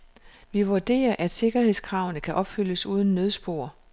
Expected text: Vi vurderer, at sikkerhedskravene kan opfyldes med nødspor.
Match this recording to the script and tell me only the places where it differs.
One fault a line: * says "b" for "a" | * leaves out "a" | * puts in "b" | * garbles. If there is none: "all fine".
* says "uden" for "med"